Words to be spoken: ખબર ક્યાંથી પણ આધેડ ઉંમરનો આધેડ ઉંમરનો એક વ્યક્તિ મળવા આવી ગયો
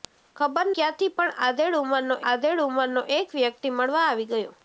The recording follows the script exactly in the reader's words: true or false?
true